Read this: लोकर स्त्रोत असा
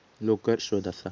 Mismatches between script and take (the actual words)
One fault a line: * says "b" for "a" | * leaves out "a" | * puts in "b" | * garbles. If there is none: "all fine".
all fine